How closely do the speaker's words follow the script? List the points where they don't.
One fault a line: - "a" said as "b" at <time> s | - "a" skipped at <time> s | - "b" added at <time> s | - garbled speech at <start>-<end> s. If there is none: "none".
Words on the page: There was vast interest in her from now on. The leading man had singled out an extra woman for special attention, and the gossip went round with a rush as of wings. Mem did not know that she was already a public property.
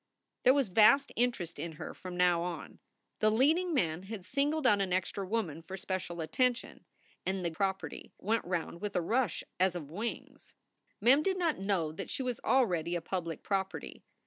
- "gossip" said as "property" at 7.5 s